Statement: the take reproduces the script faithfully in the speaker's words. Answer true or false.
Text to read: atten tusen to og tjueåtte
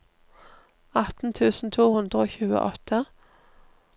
false